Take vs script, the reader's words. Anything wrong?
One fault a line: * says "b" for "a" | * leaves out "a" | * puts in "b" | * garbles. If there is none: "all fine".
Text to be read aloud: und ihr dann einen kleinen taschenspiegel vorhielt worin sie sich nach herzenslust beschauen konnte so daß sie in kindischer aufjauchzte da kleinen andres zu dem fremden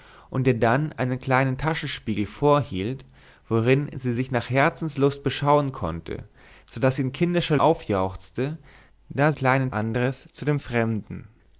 all fine